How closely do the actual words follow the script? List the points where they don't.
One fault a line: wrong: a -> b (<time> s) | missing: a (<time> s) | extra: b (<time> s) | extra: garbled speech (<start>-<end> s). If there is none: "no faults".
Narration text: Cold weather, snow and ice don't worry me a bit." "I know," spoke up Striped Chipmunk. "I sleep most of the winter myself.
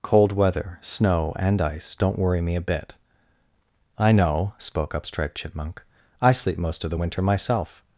no faults